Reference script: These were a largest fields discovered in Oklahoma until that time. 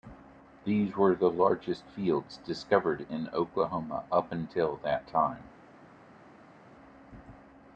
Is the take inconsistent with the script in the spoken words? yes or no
yes